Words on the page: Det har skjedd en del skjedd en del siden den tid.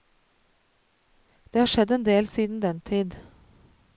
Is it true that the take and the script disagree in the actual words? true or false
true